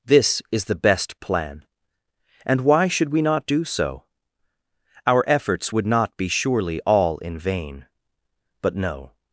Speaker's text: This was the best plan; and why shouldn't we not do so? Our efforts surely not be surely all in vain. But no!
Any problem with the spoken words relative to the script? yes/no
yes